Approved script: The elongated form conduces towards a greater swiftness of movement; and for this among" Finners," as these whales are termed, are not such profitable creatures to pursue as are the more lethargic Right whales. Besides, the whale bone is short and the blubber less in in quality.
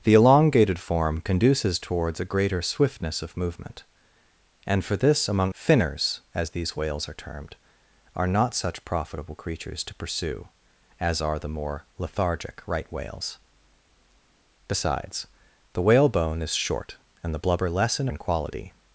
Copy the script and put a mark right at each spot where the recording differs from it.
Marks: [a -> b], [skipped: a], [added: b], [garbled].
The elongated form conduces towards a greater swiftness of movement; and for this among" Finners," as these whales are termed, are not such profitable creatures to pursue as are the more lethargic Right whales. Besides, the whale bone is short and the blubber less in in quality.